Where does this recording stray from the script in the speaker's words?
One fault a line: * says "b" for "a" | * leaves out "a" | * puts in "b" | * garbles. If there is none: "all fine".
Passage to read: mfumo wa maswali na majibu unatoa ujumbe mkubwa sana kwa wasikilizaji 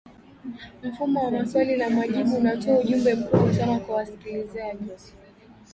all fine